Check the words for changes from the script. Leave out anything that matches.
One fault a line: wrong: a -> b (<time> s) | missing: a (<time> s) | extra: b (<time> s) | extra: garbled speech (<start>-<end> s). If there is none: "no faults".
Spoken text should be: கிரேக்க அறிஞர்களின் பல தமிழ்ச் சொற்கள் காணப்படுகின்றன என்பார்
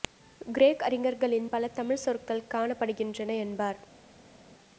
no faults